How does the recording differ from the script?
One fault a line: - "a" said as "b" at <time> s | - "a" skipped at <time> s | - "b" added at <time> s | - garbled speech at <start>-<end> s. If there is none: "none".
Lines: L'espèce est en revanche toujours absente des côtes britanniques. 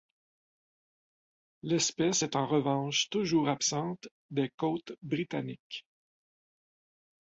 none